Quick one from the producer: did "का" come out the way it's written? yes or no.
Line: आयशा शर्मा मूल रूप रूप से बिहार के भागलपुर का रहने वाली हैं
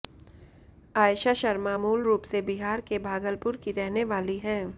no